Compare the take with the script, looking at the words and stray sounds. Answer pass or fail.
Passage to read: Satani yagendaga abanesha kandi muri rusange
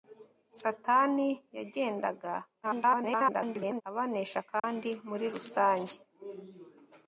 fail